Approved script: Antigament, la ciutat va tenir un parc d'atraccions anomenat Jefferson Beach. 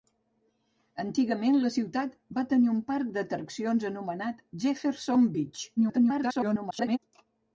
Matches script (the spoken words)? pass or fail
fail